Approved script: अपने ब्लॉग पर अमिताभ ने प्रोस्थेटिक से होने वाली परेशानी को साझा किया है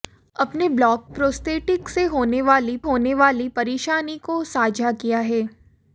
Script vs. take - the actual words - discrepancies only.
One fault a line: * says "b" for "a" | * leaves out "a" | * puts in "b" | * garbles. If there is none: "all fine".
* says "प्रोस्थेटिक से होने वाली" for "पर अमिताभ ने प्रोस्थेटिक से"